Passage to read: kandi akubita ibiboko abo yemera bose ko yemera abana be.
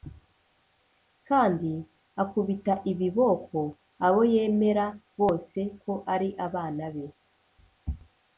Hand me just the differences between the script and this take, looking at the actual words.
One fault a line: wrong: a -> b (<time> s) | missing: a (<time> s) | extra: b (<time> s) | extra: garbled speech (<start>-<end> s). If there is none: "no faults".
wrong: yemera -> ari (6.1 s)